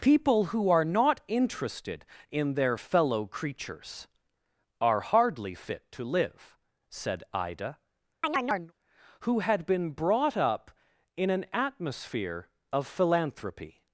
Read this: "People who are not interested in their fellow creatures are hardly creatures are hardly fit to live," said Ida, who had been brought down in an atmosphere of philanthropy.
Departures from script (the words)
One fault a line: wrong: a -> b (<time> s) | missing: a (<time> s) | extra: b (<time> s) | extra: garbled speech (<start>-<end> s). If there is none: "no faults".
missing: creatures are hardly (5.5 s)
wrong: down -> up (10.4 s)